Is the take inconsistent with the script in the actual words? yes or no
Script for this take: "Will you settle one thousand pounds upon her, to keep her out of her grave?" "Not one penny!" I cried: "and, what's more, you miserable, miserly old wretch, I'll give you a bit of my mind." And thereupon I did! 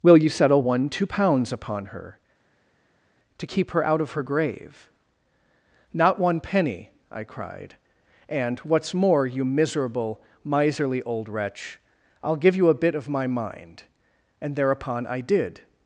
yes